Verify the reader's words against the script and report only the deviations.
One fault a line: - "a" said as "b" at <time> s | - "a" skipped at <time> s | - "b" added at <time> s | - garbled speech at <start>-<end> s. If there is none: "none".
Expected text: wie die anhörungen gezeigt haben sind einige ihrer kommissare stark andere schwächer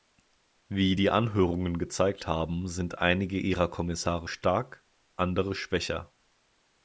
none